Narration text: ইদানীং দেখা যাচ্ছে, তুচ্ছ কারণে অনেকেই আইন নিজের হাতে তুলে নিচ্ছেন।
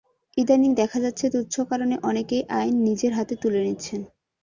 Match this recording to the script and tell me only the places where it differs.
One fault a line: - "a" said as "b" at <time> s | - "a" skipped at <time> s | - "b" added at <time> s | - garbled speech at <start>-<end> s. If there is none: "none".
none